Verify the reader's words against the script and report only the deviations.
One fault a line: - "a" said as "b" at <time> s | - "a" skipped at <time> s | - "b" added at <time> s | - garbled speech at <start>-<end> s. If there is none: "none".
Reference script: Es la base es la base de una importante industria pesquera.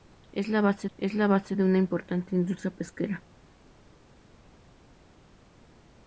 none